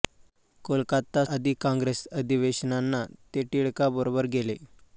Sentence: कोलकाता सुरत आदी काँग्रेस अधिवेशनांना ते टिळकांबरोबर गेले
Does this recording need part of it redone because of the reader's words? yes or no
yes